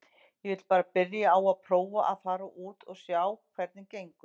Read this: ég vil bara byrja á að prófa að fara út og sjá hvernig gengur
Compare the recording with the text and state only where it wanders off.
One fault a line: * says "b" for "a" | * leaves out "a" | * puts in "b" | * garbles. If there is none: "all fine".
all fine